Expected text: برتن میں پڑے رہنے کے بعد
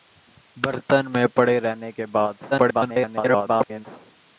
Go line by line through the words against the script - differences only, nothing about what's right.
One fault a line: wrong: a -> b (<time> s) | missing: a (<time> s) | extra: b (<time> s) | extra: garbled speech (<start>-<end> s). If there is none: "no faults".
extra: garbled speech (2.5-3.9 s)